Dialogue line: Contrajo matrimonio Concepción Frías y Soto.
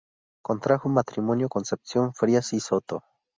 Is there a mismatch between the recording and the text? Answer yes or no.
no